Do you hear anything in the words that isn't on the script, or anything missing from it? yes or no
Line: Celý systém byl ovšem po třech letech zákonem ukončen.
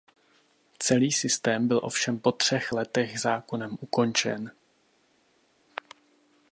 no